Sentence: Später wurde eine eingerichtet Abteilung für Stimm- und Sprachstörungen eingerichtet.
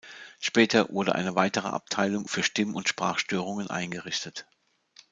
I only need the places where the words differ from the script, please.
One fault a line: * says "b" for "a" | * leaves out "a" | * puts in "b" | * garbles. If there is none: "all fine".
* says "weitere" for "eingerichtet"